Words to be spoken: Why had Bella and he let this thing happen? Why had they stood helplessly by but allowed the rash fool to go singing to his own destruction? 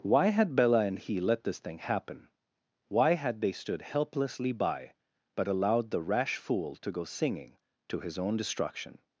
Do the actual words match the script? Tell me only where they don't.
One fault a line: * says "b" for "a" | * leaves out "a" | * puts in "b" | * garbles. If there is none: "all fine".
all fine